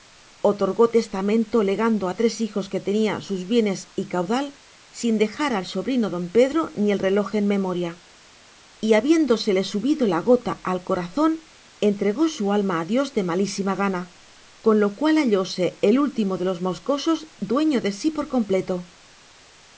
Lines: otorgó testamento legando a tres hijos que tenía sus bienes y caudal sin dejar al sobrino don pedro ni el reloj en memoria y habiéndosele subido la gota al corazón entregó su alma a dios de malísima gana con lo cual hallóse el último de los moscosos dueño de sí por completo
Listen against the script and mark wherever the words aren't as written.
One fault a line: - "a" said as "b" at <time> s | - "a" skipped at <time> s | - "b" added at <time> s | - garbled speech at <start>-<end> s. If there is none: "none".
none